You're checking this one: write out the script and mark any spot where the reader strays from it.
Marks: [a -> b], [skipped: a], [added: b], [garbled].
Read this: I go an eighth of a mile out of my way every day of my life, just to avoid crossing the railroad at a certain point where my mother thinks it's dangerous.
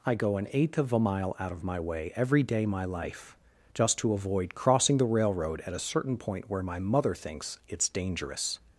I go an eighth of a mile out of my way every day [skipped: of] my life, just to avoid crossing the railroad at a certain point where my mother thinks it's dangerous.